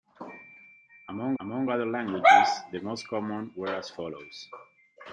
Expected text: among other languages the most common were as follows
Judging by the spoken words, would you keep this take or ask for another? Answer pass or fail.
fail